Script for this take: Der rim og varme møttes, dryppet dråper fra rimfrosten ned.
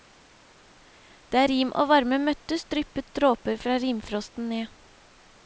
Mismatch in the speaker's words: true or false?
false